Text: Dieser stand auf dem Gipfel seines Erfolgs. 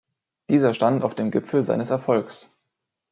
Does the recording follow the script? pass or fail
pass